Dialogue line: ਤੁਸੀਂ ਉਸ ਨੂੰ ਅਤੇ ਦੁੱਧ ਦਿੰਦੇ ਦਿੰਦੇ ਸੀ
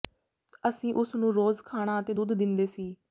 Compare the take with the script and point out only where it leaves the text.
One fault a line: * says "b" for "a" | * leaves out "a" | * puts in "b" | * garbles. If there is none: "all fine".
* says "ਅਸੀਂ" for "ਤੁਸੀਂ"
* puts in "ਰੋਜ਼ ਖਾਣਾ"
* leaves out "ਦਿੰਦੇ"